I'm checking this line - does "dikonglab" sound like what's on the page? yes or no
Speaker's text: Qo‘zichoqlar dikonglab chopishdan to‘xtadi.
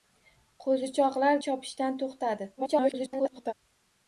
no